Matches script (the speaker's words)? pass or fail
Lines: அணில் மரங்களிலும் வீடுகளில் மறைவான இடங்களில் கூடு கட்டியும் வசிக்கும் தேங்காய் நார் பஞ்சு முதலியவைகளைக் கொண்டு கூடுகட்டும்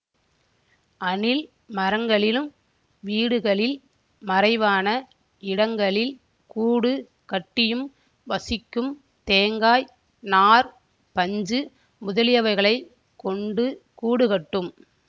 pass